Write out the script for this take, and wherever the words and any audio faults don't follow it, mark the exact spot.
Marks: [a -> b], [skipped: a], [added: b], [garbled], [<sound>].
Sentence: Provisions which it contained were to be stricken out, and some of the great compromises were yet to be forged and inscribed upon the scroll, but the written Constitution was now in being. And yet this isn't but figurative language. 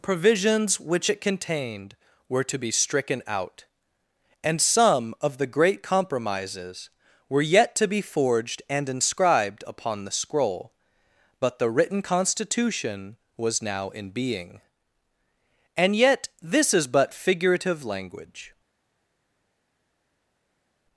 Provisions which it contained were to be stricken out, and some of the great compromises were yet to be forged and inscribed upon the scroll, but the written Constitution was now in being. And yet this [isn't -> is] but figurative language.